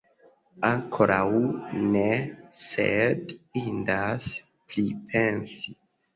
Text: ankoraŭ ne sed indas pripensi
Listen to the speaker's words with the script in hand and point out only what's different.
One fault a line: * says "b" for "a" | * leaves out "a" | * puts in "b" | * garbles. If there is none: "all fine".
all fine